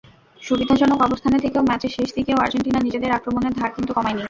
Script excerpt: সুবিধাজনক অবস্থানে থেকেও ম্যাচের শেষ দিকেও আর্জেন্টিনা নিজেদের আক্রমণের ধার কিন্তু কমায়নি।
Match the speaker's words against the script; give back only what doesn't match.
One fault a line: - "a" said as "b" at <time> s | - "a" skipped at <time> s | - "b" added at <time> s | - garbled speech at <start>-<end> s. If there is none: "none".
none